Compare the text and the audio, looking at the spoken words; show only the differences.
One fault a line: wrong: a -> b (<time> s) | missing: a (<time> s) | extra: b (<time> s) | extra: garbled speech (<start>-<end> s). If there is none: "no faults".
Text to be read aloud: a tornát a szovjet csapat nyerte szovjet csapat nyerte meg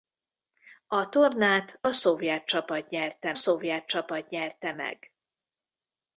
no faults